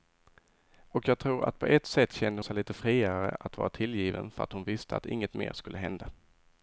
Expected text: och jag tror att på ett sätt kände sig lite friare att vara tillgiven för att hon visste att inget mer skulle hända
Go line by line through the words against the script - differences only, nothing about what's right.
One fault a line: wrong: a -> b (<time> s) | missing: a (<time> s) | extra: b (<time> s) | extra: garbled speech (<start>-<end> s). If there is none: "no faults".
no faults